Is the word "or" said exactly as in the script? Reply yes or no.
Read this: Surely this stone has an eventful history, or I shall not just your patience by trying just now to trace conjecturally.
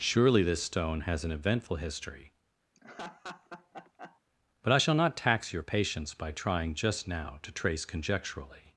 no